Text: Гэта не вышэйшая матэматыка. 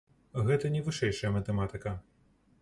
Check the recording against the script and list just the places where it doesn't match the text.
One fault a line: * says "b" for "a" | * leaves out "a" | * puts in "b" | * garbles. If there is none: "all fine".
all fine